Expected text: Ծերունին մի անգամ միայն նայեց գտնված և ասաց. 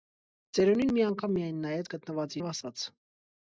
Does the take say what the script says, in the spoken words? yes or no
yes